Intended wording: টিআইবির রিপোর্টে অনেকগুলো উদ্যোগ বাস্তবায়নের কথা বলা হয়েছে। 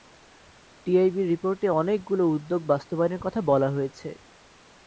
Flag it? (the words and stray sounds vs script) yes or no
no